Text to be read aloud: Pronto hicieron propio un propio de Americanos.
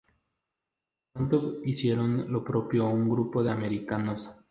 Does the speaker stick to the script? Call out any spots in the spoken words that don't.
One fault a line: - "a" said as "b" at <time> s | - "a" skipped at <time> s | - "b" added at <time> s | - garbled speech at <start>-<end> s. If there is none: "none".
- "lo" added at 2.3 s
- "propio" said as "grupo" at 3.1 s